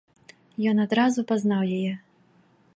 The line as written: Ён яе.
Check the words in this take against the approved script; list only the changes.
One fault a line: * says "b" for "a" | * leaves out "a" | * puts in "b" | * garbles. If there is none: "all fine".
* puts in "адразу пазнаў"